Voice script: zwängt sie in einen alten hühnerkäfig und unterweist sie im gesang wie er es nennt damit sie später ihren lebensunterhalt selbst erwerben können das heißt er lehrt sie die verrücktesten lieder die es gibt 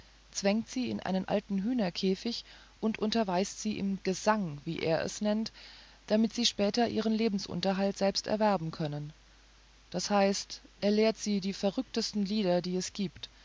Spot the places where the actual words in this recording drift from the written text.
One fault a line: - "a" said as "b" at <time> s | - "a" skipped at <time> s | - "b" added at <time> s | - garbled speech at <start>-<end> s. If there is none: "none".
none